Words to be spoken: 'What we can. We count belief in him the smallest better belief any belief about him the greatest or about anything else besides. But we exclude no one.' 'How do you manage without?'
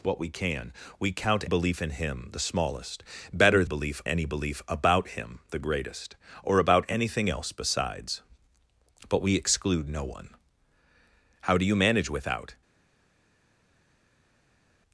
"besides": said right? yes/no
yes